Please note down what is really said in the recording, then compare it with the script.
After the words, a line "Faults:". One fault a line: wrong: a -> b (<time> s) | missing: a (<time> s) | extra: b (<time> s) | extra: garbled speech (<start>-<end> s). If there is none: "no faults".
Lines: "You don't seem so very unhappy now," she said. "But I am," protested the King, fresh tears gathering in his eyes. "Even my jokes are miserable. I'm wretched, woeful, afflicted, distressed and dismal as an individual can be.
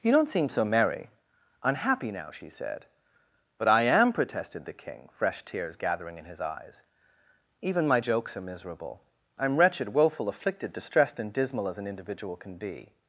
"You don't seem so merry unhappy now," she said. "But I am," protested the King, fresh tears gathering in his eyes. "Even my jokes are miserable. I'm wretched, woeful, afflicted, distressed and dismal as an individual can be.
Faults:
wrong: very -> merry (0.7 s)